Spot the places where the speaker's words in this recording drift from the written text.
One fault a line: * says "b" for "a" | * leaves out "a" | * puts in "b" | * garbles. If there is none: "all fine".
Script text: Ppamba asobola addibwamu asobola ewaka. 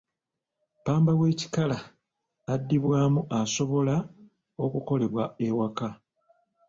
* says "w'ekikala" for "asobola"
* puts in "okukolebwa"